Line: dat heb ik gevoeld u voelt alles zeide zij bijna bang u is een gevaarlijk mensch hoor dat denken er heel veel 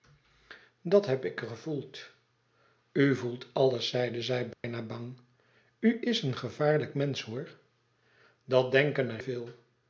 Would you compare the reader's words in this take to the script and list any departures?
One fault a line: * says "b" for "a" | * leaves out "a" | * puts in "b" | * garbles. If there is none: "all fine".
* leaves out "heel"